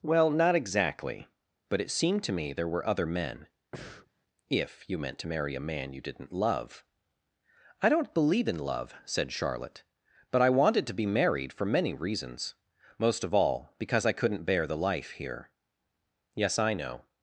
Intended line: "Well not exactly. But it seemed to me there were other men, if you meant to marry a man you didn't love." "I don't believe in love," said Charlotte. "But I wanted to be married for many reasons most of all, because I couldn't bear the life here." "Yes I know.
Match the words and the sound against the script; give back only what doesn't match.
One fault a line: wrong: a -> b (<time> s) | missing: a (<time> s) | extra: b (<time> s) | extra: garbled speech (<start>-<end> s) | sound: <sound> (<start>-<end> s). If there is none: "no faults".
sound: breath (3.7-4.1 s)